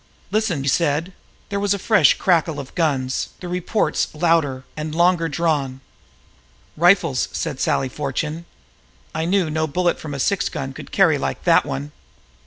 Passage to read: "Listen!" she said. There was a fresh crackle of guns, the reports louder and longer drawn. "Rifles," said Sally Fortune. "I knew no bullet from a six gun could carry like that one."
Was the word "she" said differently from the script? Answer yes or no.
yes